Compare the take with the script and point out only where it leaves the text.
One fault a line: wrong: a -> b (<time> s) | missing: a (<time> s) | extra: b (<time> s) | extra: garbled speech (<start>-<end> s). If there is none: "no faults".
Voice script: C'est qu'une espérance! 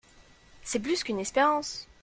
extra: plus (0.8 s)